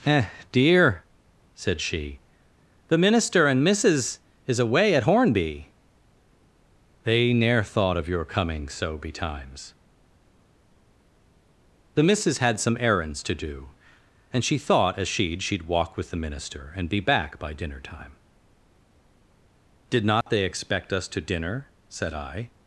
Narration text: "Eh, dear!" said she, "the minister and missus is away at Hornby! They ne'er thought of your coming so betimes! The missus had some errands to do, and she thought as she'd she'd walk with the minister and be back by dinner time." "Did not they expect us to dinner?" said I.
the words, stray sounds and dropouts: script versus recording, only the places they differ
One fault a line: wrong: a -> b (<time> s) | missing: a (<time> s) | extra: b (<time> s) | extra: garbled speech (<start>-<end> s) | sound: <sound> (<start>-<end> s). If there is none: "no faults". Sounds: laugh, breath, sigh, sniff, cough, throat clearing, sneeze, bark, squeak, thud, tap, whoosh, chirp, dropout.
sound: dropout (20.2-20.3 s)